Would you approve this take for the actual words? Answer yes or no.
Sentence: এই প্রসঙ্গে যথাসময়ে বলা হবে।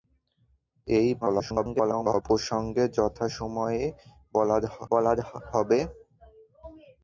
no